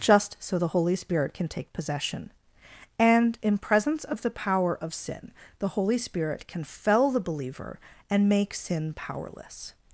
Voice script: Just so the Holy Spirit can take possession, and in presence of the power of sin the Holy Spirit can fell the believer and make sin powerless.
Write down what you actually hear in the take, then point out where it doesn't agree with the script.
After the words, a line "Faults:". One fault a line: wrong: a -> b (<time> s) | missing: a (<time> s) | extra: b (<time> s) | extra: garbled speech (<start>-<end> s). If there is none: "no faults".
Just so the Holy Spirit can take possession, and in presence of the power of sin the Holy Spirit can fell the believer and make sin powerless.
Faults:
no faults